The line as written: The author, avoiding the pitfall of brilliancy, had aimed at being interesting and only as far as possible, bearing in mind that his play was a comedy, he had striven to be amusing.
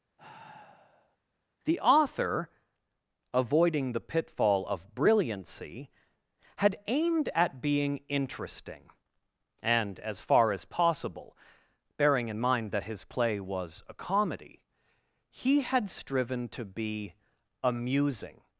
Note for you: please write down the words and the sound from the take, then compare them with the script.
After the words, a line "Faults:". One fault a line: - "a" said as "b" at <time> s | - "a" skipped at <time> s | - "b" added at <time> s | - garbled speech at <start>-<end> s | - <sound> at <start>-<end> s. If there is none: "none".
The author, avoiding the pitfall of brilliancy, had aimed at being interesting and as far as possible, bearing in mind that his play was a comedy, he had striven to be amusing.
Faults:
- sigh at 0.2-1.2 s
- "only" skipped at 10.0 s